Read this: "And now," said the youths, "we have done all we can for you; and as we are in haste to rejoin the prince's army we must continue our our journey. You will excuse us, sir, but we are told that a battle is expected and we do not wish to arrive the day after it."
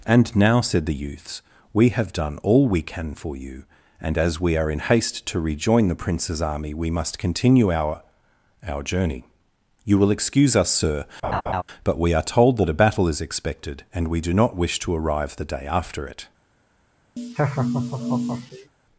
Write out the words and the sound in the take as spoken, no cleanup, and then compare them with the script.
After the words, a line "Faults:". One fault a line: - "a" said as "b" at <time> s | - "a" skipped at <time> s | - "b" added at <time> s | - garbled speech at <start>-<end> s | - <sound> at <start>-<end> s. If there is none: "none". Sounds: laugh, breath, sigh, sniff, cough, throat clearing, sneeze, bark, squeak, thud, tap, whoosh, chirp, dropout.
"And now," said the youths, "we have done all we can for you; and as we are in haste to rejoin the prince's army we must continue our our journey. You will excuse us, sir, but we are told that a battle is expected and we do not wish to arrive the day after it."
Faults:
- laugh at 11.2-11.6 s
- laugh at 17.2-18.7 s